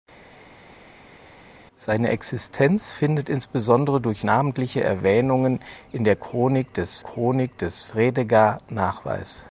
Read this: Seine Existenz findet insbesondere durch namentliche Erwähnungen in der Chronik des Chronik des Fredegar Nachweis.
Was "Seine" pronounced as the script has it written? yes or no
yes